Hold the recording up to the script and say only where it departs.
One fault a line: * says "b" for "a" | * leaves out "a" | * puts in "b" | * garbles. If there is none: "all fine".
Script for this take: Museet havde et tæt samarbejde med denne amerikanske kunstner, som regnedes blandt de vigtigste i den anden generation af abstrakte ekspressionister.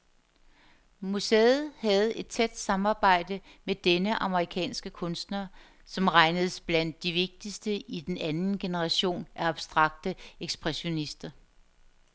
all fine